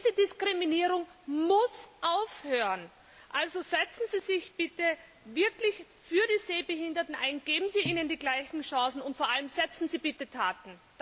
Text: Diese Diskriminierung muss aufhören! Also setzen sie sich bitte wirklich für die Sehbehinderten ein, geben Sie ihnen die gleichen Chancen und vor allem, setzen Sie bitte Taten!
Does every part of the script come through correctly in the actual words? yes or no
yes